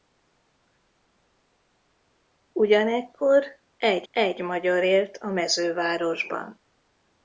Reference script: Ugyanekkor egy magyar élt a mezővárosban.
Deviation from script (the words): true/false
true